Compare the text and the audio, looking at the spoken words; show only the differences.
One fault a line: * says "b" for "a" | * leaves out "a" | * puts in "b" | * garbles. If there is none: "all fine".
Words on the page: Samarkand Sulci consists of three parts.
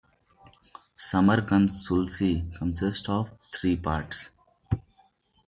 all fine